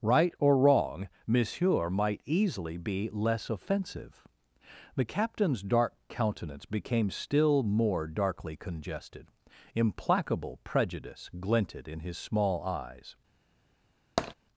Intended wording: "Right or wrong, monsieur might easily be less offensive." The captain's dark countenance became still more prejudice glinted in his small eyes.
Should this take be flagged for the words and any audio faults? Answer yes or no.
yes